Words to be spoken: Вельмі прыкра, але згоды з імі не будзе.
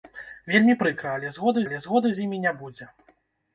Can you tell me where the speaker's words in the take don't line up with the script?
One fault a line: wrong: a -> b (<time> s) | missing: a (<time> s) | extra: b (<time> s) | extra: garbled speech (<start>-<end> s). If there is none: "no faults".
extra: але згоды (1.7 s)